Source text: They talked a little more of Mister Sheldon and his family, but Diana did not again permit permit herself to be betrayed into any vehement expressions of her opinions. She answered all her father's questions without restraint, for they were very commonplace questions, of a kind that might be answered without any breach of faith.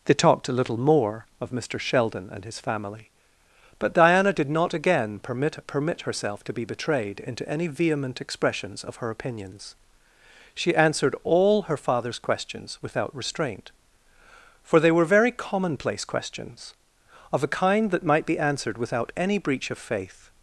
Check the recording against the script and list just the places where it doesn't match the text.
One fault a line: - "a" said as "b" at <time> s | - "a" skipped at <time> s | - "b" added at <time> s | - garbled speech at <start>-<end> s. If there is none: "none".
none